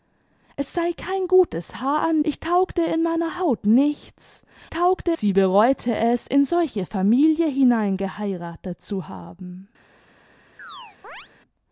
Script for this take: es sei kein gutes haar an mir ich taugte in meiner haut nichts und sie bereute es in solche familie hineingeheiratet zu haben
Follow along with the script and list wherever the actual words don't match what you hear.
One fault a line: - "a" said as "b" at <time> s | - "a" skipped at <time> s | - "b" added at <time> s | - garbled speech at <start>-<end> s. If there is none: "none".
- "mir" skipped at 2.2 s
- "und" said as "taugte" at 4.7 s